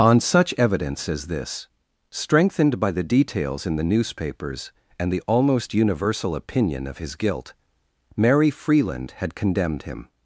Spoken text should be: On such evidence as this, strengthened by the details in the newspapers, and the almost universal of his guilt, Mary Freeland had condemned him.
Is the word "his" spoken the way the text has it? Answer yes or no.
yes